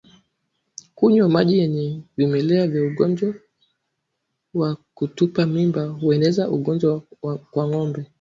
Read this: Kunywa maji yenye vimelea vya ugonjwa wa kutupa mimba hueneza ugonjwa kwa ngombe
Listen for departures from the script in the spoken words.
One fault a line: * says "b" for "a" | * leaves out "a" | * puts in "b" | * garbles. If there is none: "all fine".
all fine